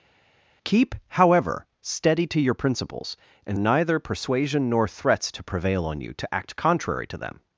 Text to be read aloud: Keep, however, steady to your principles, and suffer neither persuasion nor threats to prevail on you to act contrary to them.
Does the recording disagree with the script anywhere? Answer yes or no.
yes